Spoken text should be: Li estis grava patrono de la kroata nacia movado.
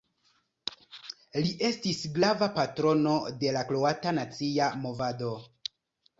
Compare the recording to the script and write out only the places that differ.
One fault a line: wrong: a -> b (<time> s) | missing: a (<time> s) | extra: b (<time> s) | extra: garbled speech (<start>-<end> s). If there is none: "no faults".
no faults